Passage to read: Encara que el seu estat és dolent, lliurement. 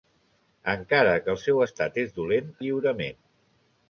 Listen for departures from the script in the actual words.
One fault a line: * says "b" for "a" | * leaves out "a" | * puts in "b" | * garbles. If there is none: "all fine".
all fine